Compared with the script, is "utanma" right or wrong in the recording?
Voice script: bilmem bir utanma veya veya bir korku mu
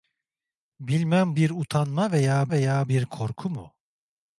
right